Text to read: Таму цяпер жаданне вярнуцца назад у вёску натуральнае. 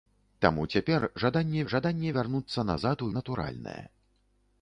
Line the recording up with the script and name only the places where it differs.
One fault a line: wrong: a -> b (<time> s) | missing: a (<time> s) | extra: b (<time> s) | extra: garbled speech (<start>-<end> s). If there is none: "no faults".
extra: жаданне (1.7 s)
missing: вёску (3.1 s)